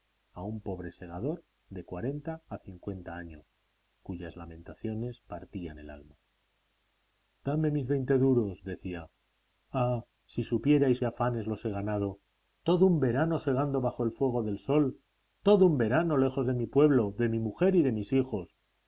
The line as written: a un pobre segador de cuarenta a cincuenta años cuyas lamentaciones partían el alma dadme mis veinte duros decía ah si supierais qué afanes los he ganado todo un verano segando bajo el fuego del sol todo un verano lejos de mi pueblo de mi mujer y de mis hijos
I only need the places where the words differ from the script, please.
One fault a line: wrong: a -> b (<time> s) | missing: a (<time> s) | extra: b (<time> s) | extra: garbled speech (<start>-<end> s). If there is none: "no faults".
no faults